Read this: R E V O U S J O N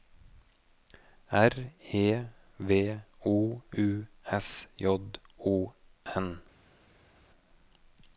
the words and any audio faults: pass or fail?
pass